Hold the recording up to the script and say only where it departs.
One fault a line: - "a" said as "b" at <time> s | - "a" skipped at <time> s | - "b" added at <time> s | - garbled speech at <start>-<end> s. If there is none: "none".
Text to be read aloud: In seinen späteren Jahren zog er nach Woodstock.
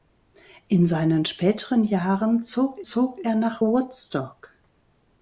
- "zog" added at 2.8 s